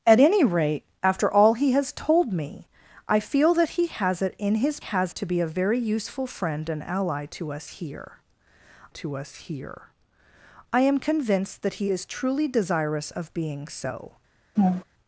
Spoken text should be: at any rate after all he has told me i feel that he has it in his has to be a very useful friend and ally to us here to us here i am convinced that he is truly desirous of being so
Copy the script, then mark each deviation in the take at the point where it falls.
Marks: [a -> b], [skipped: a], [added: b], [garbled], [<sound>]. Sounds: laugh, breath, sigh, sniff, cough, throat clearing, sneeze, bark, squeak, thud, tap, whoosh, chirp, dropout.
at any rate after all he has told me i feel that he has it in his has to be a very useful friend and ally to us here to us here i am convinced that he is truly desirous of being so [laugh]